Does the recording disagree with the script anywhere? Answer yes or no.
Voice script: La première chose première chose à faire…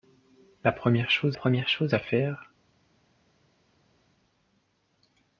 no